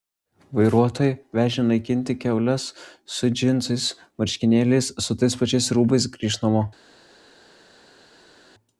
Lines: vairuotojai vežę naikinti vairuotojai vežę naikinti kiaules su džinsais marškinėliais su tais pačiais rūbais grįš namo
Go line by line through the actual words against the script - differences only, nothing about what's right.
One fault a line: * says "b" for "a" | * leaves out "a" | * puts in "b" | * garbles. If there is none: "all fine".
* leaves out "vairuotojai vežę naikinti"